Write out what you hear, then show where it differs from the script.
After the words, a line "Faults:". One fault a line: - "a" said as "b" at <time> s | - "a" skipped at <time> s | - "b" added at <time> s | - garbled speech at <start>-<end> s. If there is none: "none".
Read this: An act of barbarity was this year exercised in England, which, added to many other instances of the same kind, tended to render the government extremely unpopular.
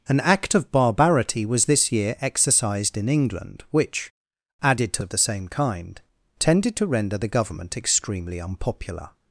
An act of barbarity was this year exercised in England, which, added to of the same kind, tended to render the government extremely unpopular.
Faults:
- "many other instances" skipped at 5.0 s